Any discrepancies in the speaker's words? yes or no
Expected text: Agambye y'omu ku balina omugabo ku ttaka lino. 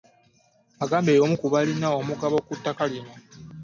no